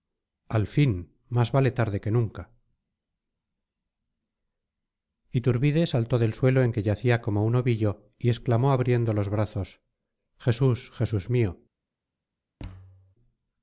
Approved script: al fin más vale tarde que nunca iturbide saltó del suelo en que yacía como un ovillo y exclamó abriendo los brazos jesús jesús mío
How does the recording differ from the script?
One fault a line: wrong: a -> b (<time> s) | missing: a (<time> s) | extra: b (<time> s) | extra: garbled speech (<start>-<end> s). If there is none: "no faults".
no faults